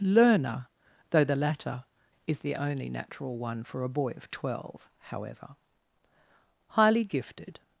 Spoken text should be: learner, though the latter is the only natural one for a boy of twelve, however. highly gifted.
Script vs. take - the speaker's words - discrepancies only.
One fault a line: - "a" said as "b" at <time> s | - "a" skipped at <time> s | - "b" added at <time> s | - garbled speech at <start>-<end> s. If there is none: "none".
none